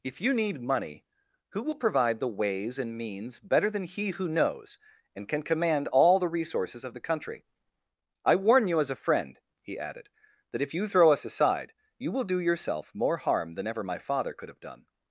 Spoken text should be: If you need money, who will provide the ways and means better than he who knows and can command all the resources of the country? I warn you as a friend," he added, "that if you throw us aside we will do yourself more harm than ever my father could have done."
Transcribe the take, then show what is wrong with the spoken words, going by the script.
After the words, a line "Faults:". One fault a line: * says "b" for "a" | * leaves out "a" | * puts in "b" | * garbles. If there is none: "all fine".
If you need money, who will provide the ways and means better than he who knows and can command all the resources of the country? I warn you as a friend," he added, "that if you throw us aside you will do yourself more harm than ever my father could have done."
Faults:
* says "you" for "we"